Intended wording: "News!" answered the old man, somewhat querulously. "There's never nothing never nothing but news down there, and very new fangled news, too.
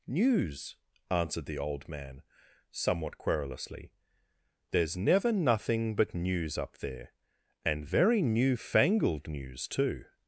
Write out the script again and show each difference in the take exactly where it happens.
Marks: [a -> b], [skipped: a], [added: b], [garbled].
"News!" answered the old man, somewhat querulously. "There's never nothing [skipped: never nothing] but news [down -> up] there, and very new fangled news, too.